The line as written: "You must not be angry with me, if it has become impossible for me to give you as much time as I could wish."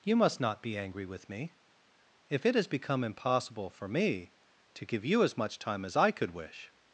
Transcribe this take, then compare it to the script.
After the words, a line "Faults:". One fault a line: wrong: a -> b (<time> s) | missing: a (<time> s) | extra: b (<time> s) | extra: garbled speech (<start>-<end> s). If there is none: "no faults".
"You must not be angry with me, if it has become impossible for me to give you as much time as I could wish."
Faults:
no faults